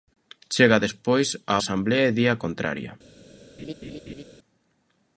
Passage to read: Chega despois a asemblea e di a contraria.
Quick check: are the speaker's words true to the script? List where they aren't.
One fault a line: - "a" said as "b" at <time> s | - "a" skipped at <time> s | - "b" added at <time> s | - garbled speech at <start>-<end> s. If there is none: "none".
none